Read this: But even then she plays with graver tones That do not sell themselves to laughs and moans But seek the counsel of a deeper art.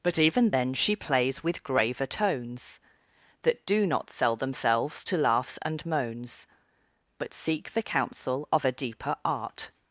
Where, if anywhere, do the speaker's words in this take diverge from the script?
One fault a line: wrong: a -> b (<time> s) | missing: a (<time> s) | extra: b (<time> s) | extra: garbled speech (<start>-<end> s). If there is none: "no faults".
no faults